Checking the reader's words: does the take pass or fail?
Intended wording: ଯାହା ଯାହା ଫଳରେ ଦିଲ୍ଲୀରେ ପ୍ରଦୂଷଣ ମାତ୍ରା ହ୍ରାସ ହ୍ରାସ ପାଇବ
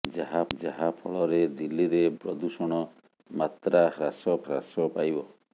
pass